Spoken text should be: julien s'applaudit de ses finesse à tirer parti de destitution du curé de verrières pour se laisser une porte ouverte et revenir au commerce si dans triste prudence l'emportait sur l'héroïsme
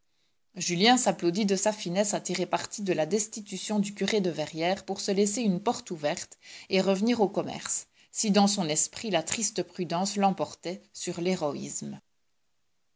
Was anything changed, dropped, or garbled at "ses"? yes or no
yes